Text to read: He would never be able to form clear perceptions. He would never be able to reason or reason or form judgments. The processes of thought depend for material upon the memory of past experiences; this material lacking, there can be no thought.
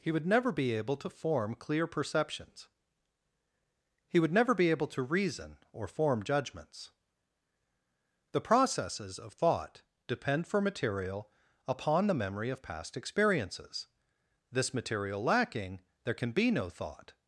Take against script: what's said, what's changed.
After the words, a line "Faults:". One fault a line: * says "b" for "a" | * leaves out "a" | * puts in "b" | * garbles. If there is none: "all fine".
He would never be able to form clear perceptions. He would never be able to reason or form judgments. The processes of thought depend for material upon the memory of past experiences; this material lacking, there can be no thought.
Faults:
* leaves out "reason or"